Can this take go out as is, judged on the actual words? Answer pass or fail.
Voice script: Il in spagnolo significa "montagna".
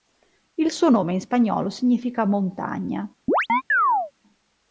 fail